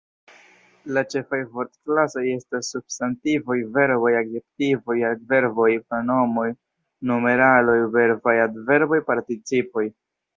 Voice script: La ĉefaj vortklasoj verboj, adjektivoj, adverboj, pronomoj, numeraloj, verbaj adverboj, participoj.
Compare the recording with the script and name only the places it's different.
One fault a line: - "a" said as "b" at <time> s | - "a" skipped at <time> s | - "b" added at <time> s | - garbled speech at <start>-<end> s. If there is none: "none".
- "estas substantivoj" added at 2.3 s